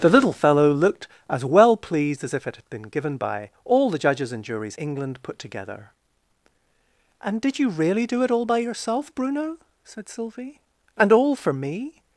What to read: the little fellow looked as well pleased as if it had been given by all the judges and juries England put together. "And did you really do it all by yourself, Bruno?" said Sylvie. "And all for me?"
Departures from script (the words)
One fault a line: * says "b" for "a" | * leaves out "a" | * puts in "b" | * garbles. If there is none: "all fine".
all fine